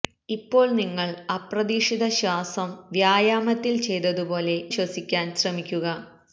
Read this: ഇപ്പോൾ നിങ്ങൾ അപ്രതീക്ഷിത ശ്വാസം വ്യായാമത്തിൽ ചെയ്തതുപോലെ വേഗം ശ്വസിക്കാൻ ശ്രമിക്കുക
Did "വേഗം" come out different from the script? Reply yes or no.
yes